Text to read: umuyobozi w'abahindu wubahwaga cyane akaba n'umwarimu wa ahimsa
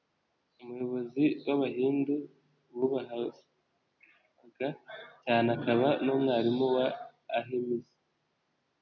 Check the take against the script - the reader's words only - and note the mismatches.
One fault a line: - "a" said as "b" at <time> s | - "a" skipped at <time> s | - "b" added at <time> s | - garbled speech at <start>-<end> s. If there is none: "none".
none